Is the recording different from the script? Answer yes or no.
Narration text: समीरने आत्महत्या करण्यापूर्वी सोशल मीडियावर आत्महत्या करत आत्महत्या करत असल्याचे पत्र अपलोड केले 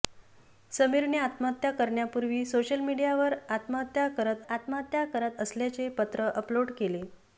no